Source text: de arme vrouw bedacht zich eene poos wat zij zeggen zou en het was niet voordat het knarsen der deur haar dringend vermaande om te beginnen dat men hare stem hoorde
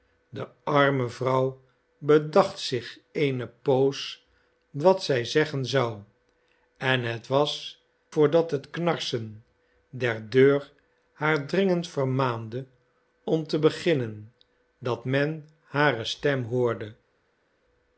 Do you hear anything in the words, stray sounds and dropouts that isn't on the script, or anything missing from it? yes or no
yes